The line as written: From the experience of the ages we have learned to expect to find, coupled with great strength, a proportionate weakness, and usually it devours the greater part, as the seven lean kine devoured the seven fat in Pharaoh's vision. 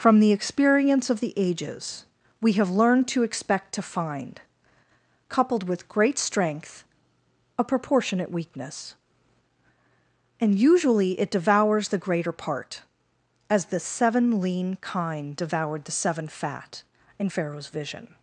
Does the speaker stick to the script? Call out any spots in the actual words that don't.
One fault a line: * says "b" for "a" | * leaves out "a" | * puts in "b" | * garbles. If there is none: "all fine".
all fine